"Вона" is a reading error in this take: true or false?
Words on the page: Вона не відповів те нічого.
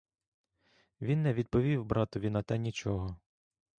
true